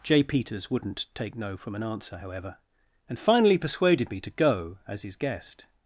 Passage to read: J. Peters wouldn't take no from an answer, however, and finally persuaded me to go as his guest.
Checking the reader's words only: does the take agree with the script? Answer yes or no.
yes